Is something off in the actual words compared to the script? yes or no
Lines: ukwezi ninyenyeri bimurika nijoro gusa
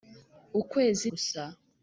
yes